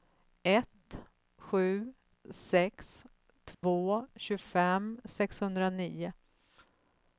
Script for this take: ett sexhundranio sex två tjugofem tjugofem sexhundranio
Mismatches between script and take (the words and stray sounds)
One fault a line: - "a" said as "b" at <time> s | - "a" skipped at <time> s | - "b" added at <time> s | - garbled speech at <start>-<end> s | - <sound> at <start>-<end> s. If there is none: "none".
- "sexhundranio" said as "sju" at 1.4 s
- dropout at 3.5-3.6 s
- "tjugofem" skipped at 5.0 s